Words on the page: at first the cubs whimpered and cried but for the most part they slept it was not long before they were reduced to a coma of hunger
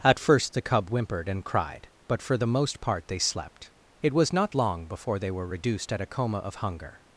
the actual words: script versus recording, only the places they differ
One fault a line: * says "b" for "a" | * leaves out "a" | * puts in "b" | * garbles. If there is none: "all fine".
* says "cub" for "cubs"
* says "at" for "to"